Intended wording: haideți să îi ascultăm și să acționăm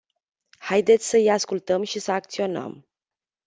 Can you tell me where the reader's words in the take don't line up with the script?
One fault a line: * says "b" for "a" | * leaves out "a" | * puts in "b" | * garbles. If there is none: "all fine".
all fine